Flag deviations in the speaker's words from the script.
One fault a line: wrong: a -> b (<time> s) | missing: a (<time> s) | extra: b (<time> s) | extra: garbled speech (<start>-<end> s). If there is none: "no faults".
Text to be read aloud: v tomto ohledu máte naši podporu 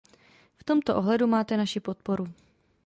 no faults